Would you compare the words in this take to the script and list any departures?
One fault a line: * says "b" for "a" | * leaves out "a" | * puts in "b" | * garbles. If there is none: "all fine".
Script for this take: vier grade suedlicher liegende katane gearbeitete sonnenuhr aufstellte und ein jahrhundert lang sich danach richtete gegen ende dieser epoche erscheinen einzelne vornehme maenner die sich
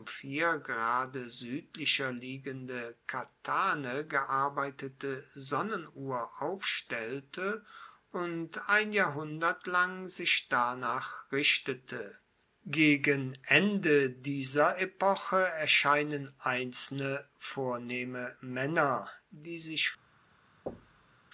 all fine